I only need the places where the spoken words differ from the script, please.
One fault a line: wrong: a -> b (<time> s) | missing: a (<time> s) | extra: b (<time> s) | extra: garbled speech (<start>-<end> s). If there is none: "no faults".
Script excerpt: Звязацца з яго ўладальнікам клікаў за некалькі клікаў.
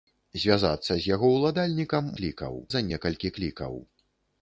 no faults